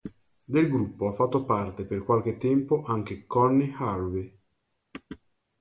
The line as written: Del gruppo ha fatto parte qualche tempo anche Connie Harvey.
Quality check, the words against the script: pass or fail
fail